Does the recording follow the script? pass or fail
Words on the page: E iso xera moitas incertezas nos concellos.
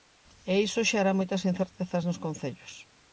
pass